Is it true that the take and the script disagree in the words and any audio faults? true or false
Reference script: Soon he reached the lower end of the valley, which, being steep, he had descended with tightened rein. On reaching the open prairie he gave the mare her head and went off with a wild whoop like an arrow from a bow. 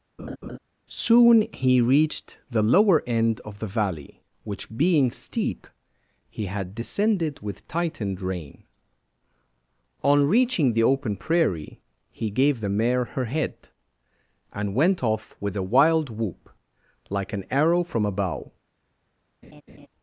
true